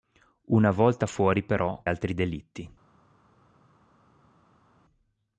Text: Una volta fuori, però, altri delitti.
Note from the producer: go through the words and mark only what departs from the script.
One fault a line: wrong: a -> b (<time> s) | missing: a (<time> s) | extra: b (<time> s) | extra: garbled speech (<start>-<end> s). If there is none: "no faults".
no faults